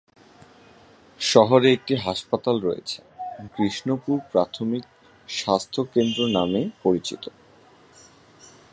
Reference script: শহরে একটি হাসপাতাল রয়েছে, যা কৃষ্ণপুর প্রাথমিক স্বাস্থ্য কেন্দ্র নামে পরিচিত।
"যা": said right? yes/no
no